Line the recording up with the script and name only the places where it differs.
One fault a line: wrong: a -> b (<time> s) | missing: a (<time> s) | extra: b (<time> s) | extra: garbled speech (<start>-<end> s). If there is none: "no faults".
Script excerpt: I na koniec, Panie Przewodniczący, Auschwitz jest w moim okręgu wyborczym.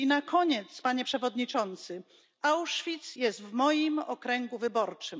no faults